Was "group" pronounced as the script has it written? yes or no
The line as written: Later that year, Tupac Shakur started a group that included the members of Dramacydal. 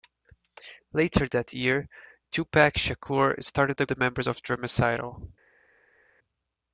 no